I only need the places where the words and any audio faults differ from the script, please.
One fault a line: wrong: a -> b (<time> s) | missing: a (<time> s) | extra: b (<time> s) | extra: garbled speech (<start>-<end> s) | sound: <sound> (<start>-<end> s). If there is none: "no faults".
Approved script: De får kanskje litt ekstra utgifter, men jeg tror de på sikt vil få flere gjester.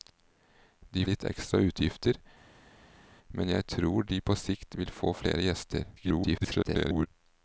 missing: får kanskje (1.0 s)
extra: garbled speech (6.0-7.1 s)